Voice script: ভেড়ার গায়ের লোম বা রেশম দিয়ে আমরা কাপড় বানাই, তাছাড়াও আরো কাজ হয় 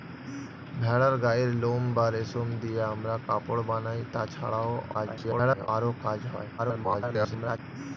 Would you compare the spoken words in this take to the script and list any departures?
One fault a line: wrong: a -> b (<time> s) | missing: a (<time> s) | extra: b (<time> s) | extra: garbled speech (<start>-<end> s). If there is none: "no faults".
extra: garbled speech (4.9-5.7 s)
extra: garbled speech (6.6-7.6 s)